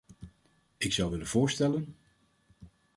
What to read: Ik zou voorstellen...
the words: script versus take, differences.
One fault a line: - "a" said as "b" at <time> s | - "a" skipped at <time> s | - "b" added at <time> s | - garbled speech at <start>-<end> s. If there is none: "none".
- "willen" added at 1.1 s